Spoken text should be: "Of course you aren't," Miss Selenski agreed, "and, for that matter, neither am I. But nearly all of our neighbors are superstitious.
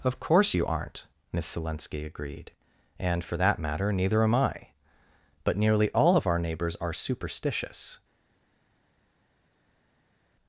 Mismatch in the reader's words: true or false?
false